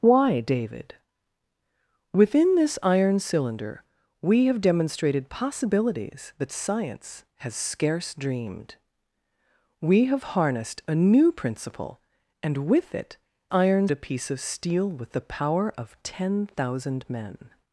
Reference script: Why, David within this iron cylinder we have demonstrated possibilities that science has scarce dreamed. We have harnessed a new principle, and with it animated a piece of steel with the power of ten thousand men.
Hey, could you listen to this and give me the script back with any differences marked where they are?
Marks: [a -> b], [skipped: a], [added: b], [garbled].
Why, David within this iron cylinder we have demonstrated possibilities that science has scarce dreamed. We have harnessed a new principle, and with it [animated -> iron] a piece of steel with the power of ten thousand men.